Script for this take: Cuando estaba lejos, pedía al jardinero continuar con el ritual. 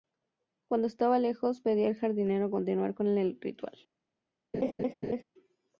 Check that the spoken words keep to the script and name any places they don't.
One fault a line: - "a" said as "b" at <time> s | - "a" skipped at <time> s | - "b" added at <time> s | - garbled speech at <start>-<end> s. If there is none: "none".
none